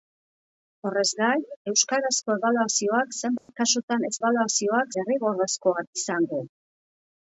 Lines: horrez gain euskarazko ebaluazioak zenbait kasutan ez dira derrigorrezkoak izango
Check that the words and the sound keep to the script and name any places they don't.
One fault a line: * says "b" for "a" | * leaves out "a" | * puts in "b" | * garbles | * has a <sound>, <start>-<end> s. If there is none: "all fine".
* has a dropout, 3.4-3.5 s
* says "ebaluazioak" for "dira"